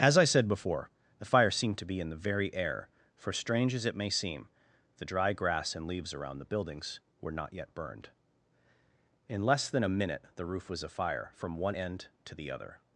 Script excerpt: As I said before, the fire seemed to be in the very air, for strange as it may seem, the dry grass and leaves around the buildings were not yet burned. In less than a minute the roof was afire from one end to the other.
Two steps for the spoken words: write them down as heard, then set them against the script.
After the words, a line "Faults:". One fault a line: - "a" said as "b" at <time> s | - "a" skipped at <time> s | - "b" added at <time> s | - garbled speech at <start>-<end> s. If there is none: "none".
As I said before, the fire seemed to be in the very air, for strange as it may seem, the dry grass and leaves around the buildings were not yet burned. In less than a minute the roof was afire from one end to the other.
Faults:
none